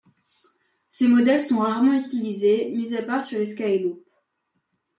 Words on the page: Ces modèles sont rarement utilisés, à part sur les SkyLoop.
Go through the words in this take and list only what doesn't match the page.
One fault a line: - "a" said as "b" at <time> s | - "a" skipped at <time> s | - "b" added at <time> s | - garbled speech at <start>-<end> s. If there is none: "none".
- "mis" added at 2.7 s